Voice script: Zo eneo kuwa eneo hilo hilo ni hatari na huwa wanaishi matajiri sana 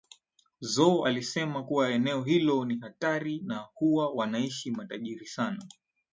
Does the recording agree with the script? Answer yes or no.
no